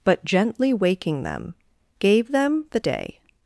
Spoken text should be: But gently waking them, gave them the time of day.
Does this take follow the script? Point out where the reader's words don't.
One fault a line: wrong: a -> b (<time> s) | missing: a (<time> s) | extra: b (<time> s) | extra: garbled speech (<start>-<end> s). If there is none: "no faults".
missing: time of (2.8 s)